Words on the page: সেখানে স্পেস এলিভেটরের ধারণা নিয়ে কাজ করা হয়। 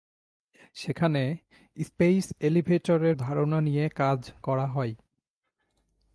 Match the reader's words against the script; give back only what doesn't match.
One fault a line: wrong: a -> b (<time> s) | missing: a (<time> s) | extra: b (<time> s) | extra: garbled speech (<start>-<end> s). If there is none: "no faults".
no faults